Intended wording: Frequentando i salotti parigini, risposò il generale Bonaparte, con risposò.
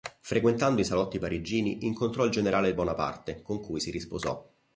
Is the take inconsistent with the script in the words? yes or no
yes